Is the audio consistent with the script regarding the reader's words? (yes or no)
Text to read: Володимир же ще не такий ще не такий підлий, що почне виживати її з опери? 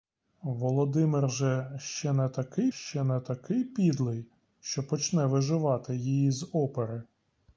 yes